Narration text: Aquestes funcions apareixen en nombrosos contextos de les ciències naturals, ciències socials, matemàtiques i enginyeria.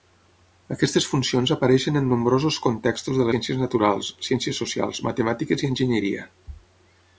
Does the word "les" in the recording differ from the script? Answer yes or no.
yes